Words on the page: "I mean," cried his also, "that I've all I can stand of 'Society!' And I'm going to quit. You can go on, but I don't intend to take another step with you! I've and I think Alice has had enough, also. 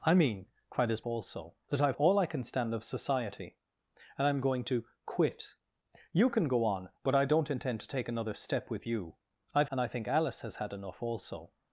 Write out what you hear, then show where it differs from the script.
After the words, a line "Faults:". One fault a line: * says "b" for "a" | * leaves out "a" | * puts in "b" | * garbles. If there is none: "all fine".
"I mean," cried his also, "that I've all I can stand of 'Society!' And I'm going to quit. You can go on, but I don't intend to take another step with you! I've and I think Alice has had enough, also.
Faults:
all fine